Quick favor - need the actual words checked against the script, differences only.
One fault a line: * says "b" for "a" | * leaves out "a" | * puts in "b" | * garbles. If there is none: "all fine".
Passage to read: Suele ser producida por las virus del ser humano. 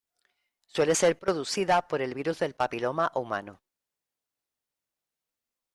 * says "el" for "las"
* says "papiloma" for "ser"